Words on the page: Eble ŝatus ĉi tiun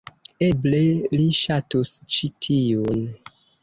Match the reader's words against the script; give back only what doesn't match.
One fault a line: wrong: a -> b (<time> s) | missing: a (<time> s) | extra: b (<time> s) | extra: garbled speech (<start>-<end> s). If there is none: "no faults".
extra: li (1.2 s)